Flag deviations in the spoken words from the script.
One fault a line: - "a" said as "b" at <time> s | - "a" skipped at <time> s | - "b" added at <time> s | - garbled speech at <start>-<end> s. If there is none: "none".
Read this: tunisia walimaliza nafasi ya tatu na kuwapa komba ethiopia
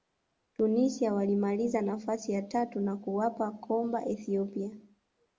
none